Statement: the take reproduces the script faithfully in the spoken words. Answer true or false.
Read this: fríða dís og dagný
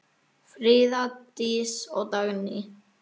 true